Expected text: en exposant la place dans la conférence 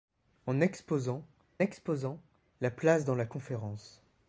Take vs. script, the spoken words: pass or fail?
fail